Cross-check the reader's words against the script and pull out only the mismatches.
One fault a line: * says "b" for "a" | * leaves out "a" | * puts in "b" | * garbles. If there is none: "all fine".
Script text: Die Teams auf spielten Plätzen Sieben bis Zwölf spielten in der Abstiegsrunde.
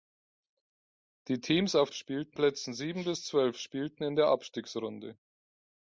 all fine